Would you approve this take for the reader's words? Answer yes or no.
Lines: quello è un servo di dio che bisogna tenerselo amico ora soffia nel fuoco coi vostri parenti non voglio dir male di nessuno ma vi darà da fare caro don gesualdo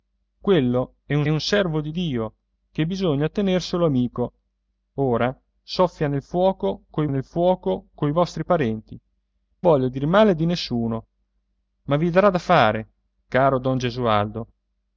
no